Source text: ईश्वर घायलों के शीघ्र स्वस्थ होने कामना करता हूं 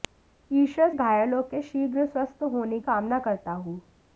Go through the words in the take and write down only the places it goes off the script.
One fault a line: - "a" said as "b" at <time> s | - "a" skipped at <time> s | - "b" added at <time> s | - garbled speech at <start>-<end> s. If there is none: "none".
none